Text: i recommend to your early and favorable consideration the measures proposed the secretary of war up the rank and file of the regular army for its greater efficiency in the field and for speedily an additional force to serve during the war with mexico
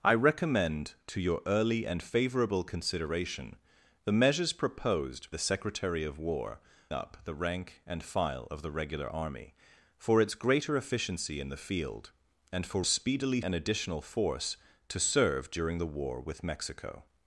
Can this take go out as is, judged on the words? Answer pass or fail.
pass